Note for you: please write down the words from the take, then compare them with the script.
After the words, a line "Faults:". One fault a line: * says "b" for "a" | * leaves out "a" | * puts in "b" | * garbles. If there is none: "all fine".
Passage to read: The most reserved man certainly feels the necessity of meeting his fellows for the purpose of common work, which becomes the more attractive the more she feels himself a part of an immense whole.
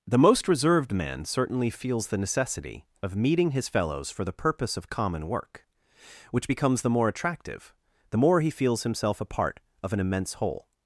The most reserved man certainly feels the necessity of meeting his fellows for the purpose of common work, which becomes the more attractive the more he feels himself a part of an immense whole.
Faults:
* says "he" for "she"